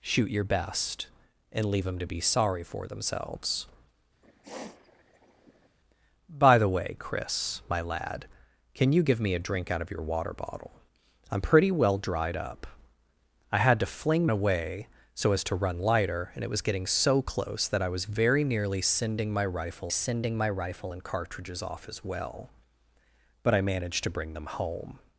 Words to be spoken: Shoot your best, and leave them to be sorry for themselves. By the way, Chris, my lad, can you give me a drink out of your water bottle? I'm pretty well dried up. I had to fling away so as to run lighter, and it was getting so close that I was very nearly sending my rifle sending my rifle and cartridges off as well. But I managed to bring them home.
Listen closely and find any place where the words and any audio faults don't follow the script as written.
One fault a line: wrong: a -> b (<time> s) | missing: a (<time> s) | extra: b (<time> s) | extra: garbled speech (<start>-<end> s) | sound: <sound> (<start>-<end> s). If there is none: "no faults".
sound: sniff (4.2-5.8 s)